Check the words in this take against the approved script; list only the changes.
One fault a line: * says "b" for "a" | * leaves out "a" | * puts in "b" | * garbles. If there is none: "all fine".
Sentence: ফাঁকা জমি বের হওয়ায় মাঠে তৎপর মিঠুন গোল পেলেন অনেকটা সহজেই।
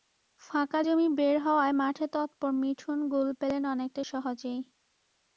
all fine